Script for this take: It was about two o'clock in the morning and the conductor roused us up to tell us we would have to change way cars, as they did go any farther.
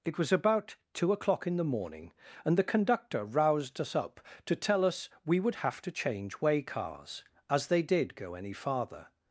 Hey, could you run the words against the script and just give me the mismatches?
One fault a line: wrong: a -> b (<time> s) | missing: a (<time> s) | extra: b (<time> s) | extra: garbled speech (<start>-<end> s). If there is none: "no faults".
no faults